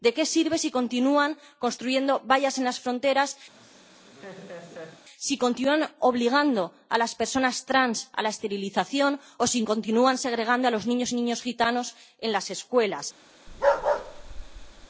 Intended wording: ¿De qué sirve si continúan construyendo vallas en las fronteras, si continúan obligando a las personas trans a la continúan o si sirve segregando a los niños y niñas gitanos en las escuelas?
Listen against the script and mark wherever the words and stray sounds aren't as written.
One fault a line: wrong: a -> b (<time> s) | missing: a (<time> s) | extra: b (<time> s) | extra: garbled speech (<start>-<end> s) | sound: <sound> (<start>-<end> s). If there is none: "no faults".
sound: laugh (3.5-5.0 s)
wrong: continúan -> esterilización (8.4 s)
wrong: sirve -> continúan (9.7 s)
sound: bark (13.5-14.9 s)